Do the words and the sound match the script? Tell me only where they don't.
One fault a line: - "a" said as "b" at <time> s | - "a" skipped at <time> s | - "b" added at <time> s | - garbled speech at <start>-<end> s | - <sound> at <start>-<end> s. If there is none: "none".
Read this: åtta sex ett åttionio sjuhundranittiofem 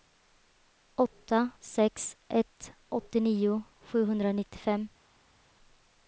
none